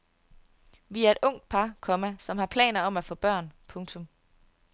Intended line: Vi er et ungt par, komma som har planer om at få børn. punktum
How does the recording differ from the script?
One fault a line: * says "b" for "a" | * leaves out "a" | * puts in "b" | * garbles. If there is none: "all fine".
all fine